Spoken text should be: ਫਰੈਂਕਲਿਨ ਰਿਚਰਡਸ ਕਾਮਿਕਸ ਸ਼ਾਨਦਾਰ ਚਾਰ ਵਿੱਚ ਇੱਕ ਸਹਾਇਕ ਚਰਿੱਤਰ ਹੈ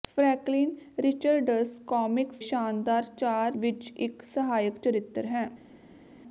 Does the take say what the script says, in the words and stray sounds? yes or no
yes